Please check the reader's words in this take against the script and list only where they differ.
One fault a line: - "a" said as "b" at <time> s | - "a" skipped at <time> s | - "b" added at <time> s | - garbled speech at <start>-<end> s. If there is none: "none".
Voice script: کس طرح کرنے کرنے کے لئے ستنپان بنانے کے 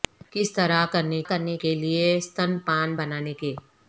none